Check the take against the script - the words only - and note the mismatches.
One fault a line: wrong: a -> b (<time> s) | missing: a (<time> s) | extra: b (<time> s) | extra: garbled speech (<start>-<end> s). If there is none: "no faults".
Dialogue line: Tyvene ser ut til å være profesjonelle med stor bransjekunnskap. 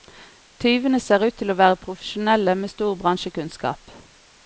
no faults